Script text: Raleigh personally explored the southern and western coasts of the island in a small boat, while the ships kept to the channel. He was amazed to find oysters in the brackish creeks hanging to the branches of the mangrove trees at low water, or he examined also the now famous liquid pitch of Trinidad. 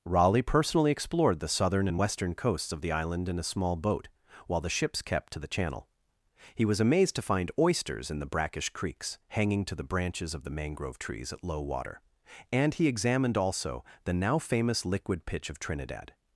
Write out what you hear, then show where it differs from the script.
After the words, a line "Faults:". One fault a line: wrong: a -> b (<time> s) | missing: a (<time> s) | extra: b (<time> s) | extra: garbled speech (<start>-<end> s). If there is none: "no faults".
Raleigh personally explored the southern and western coasts of the island in a small boat, while the ships kept to the channel. He was amazed to find oysters in the brackish creeks hanging to the branches of the mangrove trees at low water, and he examined also the now famous liquid pitch of Trinidad.
Faults:
wrong: or -> and (12.5 s)